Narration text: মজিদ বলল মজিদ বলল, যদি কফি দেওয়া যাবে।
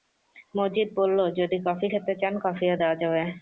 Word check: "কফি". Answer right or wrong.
wrong